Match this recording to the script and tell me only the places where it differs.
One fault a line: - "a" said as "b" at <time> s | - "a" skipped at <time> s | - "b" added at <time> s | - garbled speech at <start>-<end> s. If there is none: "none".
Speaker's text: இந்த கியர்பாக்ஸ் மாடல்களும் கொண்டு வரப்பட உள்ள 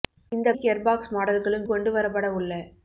none